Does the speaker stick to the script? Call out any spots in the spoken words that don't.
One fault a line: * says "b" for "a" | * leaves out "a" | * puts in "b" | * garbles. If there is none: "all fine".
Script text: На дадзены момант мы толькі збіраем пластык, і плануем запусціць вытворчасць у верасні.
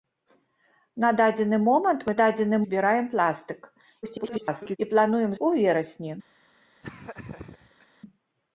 * says "дадзены" for "толькі"
* garbles
* leaves out "запусціць вытворчасць"